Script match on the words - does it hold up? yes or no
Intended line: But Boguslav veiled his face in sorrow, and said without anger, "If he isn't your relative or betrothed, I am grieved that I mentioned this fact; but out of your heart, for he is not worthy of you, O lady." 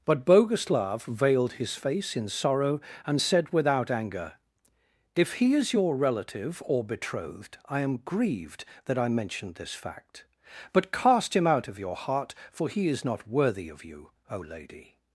no